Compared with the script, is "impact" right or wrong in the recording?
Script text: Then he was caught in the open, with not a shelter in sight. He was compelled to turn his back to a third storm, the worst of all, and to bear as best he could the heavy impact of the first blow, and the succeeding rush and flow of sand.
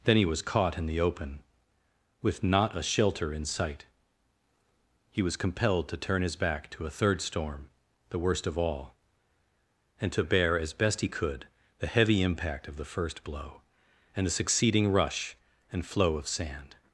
right